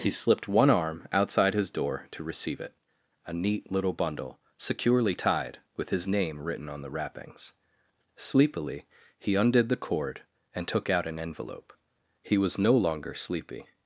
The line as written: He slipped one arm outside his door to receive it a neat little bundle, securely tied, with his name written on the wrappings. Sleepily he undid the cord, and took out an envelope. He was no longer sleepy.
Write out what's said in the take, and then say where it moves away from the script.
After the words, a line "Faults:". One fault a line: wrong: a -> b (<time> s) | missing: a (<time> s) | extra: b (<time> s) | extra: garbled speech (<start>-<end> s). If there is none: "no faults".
He slipped one arm outside his door to receive it a neat little bundle, securely tied, with his name written on the wrappings. Sleepily he undid the cord, and took out an envelope. He was no longer sleepy.
Faults:
no faults